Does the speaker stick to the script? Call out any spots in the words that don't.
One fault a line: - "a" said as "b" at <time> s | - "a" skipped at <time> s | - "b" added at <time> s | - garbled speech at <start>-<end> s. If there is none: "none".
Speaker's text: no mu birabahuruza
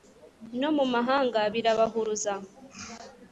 - "mahanga" added at 0.9 s